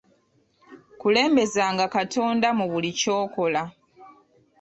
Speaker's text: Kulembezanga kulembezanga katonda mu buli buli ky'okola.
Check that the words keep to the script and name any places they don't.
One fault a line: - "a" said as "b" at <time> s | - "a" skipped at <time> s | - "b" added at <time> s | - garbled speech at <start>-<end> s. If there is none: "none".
- "kulembezanga" skipped at 1.9 s
- "buli" skipped at 2.9 s